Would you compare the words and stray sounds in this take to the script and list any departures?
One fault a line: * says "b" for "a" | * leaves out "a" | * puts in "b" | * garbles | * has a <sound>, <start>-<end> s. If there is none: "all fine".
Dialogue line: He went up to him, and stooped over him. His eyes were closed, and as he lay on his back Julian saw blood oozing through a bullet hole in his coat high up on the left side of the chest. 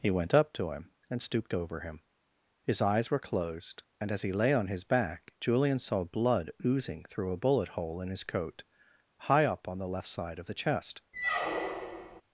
* has a squeak, 11.1-12.2 s